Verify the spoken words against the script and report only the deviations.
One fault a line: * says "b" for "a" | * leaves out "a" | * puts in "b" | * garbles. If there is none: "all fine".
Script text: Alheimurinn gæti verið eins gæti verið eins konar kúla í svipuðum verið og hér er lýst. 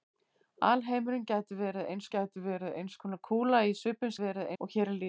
all fine